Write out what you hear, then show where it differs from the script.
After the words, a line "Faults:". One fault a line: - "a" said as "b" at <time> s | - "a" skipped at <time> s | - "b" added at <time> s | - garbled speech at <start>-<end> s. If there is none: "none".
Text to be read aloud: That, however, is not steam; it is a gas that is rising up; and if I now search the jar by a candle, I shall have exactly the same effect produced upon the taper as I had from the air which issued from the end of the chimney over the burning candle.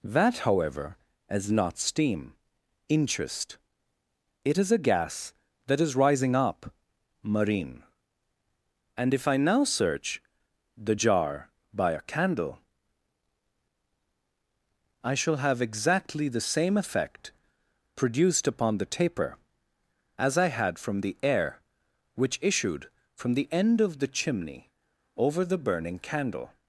That, however, is not steam; interest it is a gas that is rising up; marine and if I now search the jar by a candle, I shall have exactly the same effect produced upon the taper as I had from the air which issued from the end of the chimney over the burning candle.
Faults:
- "interest" added at 2.9 s
- "marine" added at 7.2 s